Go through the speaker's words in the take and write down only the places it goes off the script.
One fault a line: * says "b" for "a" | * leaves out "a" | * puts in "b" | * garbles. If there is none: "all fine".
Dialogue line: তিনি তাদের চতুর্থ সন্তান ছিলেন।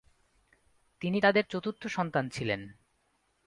all fine